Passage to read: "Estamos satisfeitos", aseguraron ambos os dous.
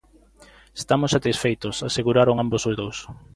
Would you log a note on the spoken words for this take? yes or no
no